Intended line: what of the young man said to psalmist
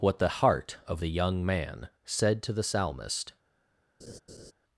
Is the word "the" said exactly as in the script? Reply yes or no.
yes